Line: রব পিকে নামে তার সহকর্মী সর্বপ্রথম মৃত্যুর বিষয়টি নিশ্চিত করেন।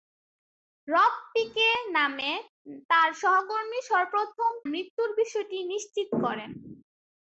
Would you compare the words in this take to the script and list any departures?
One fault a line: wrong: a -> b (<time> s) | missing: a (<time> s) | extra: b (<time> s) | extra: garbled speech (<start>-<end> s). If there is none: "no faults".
no faults